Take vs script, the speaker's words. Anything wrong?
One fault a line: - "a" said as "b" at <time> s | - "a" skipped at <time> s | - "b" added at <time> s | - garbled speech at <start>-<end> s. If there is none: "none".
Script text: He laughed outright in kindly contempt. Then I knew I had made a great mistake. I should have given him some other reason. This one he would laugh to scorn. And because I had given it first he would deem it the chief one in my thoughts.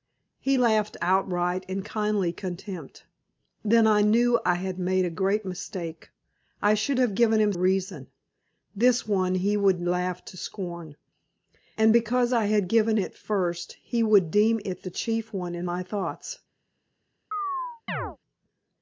- "some other" skipped at 7.5 s